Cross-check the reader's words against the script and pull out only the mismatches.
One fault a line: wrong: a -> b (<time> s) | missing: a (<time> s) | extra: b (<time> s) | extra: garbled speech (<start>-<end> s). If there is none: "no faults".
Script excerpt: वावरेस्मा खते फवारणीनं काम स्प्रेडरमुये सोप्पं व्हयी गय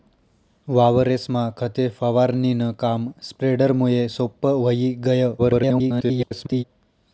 extra: garbled speech (5.4-6.6 s)